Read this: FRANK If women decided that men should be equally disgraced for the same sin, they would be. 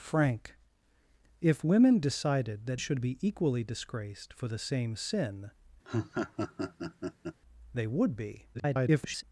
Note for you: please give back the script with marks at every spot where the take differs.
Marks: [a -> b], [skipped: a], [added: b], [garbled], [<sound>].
FRANK If women decided that [skipped: men] should be equally disgraced for the same sin, [laugh] they would be. [garbled]